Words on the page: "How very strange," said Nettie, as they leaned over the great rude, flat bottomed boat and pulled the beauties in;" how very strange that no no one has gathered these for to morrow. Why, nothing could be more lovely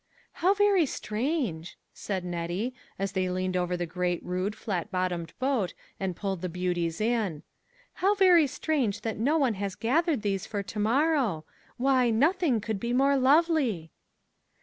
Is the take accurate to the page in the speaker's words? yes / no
no